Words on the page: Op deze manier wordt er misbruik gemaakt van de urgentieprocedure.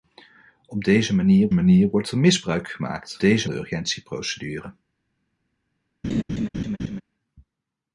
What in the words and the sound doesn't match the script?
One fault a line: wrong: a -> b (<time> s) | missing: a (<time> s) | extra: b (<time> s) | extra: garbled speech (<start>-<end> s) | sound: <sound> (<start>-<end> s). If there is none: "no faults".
extra: manier (1.5 s)
wrong: van -> deze (3.2 s)
sound: laugh (6.0-7.0 s)